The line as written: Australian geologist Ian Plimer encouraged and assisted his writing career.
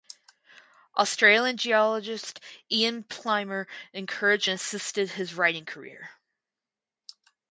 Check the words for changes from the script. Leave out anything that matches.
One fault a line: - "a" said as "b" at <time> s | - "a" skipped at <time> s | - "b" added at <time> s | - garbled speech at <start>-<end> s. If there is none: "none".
none